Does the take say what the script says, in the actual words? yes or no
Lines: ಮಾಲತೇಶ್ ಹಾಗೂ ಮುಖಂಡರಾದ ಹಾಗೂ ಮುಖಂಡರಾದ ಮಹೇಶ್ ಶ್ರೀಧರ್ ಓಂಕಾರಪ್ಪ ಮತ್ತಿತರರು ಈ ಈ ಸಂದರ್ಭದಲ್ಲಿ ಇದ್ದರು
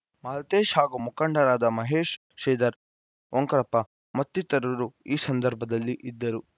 no